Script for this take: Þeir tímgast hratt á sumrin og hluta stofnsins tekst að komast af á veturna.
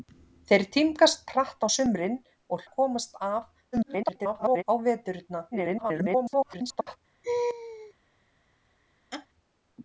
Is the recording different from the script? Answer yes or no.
yes